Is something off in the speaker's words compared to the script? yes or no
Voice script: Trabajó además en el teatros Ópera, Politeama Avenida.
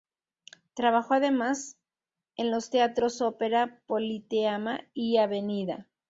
yes